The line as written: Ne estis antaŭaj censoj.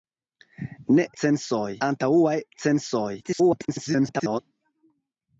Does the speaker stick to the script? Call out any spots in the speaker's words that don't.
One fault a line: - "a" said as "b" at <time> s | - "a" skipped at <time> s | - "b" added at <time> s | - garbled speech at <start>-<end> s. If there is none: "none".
- "estis" said as "censoj" at 1.2 s
- garbled speech at 3.2-4.4 s